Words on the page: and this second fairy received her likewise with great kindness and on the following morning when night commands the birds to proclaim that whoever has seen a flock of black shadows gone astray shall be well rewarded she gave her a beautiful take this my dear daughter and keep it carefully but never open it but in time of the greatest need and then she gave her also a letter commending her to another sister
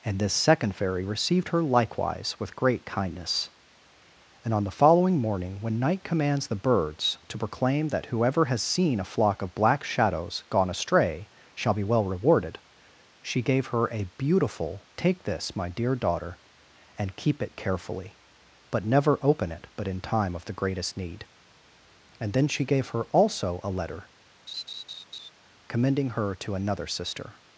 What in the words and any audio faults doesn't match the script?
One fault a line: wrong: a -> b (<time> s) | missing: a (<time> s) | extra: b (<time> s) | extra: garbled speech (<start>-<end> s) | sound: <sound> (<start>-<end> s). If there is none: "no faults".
sound: laugh (24.5-25.3 s)